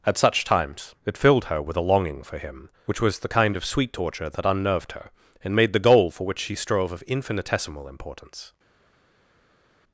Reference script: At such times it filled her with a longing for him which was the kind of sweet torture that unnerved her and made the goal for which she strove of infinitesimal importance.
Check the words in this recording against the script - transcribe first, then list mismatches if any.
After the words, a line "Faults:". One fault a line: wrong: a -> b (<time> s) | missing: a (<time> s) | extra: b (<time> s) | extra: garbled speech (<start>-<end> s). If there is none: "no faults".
At such times it filled her with a longing for him which was the kind of sweet torture that unnerved her and made the goal for which she strove of infinitesimal importance.
Faults:
no faults